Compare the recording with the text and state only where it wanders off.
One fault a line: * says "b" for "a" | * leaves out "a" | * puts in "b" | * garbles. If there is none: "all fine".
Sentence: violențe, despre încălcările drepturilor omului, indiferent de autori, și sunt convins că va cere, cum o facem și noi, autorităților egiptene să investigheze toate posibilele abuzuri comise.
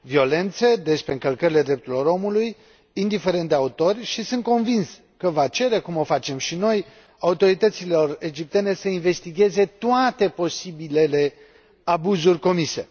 all fine